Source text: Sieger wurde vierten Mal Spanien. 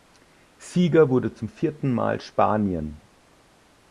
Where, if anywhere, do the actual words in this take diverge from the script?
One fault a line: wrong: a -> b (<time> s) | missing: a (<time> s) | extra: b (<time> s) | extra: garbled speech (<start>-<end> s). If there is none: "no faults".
extra: zum (1.3 s)